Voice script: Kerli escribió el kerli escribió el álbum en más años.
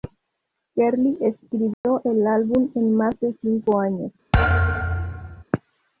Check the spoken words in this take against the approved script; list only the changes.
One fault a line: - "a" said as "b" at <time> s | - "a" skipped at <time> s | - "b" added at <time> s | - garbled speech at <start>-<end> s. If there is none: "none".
- "kerli escribió el" skipped at 2.3 s
- "de cinco" added at 3.2 s